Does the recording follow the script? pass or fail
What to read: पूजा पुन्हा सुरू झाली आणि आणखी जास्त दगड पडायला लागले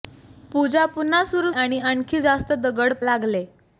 fail